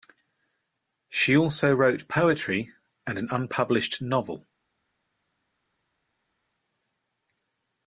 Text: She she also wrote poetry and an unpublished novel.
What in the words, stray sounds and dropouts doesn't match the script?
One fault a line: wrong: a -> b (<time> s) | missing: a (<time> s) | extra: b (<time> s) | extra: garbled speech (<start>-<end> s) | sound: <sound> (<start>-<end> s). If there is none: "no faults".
missing: she (1.4 s)